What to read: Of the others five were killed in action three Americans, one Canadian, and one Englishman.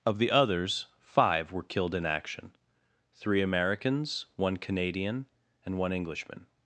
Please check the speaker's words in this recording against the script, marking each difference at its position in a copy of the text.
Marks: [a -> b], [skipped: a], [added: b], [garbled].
Of the others five were killed in action three Americans, one Canadian, and one Englishman.